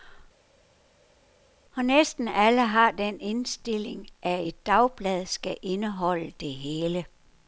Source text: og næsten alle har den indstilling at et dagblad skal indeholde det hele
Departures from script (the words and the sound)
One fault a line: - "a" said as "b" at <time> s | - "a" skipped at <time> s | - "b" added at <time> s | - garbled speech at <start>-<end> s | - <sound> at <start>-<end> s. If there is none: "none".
none